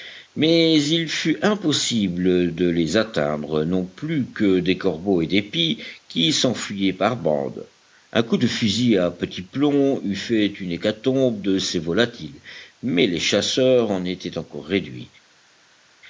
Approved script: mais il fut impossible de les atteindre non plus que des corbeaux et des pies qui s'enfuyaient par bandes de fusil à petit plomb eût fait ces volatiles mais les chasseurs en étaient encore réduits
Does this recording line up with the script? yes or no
no